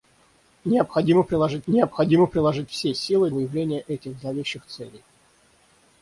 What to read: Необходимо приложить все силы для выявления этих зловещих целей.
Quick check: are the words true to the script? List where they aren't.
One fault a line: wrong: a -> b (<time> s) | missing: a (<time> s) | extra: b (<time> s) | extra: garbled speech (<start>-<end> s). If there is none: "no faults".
extra: необходимо приложить (1.7 s)
missing: для (3.3 s)